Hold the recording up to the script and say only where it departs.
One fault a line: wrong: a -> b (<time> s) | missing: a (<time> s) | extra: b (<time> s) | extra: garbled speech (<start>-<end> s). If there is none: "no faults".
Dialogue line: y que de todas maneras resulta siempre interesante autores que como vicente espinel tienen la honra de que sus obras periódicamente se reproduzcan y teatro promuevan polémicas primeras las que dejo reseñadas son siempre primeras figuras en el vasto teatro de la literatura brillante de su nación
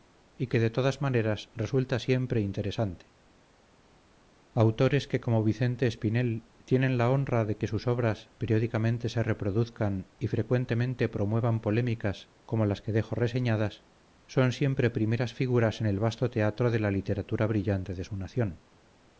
wrong: teatro -> frecuentemente (10.3 s)
wrong: primeras -> como (12.4 s)